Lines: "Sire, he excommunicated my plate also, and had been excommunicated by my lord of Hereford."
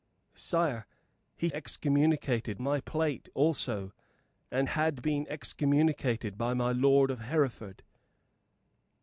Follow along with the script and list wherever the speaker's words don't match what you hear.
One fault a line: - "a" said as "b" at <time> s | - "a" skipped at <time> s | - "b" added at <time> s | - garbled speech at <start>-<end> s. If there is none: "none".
none